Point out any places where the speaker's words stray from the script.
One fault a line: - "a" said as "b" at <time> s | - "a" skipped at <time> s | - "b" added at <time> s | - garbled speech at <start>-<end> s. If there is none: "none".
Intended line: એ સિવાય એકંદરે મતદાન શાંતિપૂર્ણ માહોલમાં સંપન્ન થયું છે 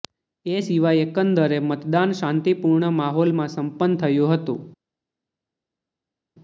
- "છે" said as "હતું" at 4.4 s